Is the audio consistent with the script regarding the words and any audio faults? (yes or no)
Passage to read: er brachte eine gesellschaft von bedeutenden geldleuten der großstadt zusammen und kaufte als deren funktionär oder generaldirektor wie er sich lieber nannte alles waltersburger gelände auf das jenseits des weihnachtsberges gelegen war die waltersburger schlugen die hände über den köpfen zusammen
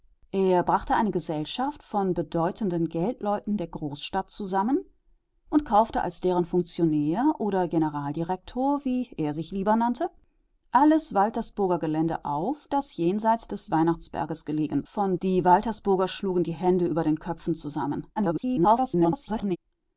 no